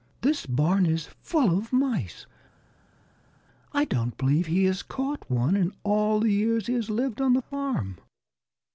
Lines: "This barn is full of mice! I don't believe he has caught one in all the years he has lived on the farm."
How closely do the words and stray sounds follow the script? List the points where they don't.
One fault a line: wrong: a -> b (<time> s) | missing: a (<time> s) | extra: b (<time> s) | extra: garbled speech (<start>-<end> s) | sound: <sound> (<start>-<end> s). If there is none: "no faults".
no faults